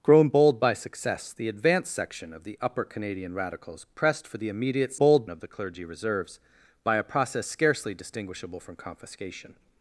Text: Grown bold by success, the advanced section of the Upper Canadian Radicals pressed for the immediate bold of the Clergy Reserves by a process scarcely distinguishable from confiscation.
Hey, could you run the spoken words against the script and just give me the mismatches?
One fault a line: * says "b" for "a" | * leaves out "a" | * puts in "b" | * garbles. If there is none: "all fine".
all fine